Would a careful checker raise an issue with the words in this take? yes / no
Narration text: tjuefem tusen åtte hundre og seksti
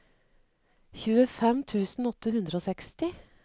no